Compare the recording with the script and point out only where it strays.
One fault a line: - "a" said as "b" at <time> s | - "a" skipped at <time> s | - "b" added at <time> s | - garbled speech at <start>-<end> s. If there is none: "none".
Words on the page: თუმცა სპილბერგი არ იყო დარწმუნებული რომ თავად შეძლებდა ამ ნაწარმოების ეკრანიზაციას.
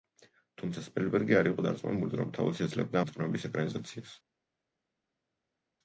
- "ამ" skipped at 3.0 s